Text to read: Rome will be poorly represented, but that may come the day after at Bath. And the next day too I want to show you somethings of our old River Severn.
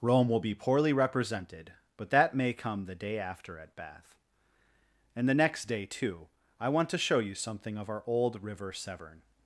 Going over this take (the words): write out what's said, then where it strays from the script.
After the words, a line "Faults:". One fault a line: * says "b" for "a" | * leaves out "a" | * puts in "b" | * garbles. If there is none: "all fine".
Rome will be poorly represented, but that may come the day after at Bath. And the next day too I want to show you something of our old River Severn.
Faults:
* says "something" for "somethings"